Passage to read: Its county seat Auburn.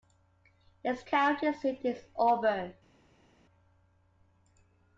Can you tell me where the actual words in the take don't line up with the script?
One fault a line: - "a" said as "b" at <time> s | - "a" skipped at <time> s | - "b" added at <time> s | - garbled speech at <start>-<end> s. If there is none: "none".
- "is" added at 1.8 s